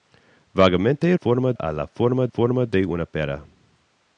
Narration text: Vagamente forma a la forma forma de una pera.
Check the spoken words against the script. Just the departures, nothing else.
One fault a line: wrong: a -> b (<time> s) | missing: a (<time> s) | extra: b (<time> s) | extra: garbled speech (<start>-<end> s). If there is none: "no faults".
no faults